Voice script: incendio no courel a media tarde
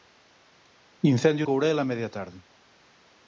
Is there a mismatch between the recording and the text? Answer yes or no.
yes